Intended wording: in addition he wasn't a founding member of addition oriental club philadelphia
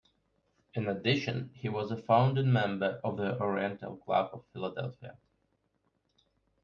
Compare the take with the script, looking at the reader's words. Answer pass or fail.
fail